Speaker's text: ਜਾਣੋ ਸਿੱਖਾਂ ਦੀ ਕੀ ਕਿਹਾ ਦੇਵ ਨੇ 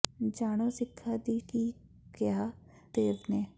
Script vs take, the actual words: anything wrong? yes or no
no